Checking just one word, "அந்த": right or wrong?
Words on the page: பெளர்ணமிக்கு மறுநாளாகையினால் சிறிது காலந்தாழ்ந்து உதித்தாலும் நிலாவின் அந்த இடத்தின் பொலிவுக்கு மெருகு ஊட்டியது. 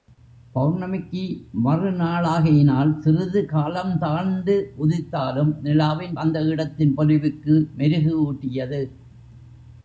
right